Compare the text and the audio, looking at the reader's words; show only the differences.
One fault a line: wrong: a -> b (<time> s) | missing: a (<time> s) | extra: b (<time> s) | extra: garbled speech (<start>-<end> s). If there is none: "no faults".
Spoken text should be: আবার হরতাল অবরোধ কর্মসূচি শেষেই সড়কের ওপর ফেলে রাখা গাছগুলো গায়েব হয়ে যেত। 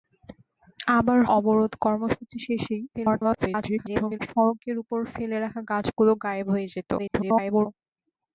missing: হরতাল (1.2 s)
extra: garbled speech (2.9-4.2 s)
extra: garbled speech (7.0-7.7 s)